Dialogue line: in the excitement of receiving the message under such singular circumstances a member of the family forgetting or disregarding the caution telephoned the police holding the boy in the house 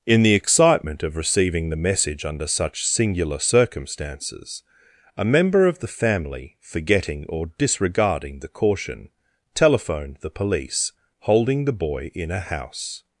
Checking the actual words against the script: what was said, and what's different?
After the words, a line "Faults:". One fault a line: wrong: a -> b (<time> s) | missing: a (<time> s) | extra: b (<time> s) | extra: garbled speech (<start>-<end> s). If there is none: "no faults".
in the excitement of receiving the message under such singular circumstances a member of the family forgetting or disregarding the caution telephoned the police holding the boy in a house
Faults:
wrong: the -> a (12.3 s)